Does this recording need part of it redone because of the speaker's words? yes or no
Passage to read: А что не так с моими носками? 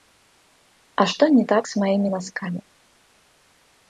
no